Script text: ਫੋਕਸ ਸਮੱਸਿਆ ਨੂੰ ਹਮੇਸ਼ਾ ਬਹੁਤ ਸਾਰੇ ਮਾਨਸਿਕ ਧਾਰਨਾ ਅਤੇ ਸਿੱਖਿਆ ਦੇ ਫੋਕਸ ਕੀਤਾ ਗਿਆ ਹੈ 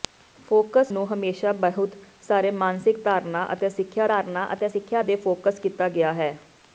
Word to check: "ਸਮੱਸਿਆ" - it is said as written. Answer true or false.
false